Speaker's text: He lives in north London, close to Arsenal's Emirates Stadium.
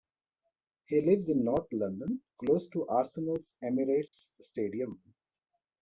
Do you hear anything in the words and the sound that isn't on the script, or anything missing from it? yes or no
yes